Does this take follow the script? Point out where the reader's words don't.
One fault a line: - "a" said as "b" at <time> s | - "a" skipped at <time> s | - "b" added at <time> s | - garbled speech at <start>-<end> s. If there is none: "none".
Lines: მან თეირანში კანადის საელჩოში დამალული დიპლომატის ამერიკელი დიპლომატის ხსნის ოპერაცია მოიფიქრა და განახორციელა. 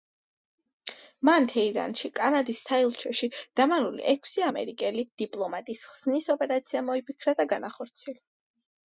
- "დიპლომატის" said as "ექვსი" at 4.1 s